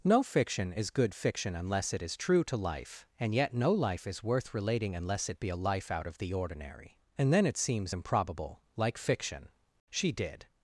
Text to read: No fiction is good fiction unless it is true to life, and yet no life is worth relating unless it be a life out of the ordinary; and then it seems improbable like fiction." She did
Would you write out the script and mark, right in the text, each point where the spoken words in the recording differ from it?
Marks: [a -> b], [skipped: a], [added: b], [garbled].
No fiction is good fiction unless it is true to life, and yet no life is worth relating unless it be a life out of the ordinary; and then it seems improbable like fiction." She did